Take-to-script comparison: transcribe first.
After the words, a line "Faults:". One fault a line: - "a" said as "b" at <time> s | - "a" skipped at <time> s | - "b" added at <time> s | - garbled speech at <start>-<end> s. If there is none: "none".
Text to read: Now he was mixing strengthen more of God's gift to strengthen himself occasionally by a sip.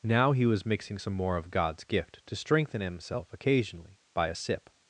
Now he was mixing some more of God's gift to strengthen himself occasionally by a sip.
Faults:
- "strengthen" said as "some" at 0.9 s